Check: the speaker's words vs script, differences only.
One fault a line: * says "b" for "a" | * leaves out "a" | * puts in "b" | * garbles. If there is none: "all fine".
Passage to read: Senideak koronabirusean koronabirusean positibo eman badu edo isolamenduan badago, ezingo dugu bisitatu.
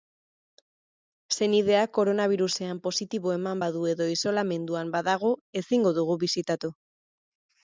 * leaves out "koronabirusean"